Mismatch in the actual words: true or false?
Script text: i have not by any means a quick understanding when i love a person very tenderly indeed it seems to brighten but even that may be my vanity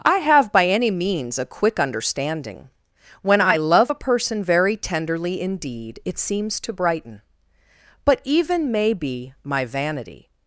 true